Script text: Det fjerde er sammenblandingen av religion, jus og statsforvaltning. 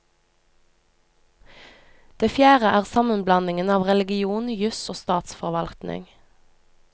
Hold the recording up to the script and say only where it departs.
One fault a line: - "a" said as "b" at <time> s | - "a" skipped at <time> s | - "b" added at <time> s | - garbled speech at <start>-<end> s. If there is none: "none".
none